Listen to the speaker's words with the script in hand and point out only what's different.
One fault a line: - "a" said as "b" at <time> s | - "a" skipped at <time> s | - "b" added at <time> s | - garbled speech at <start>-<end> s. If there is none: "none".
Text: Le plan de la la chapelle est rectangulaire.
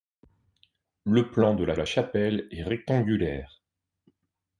none